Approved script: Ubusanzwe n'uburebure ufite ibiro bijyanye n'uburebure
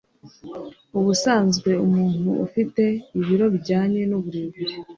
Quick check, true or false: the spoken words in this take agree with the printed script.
false